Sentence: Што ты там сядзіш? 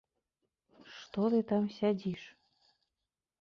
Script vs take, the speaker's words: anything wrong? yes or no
no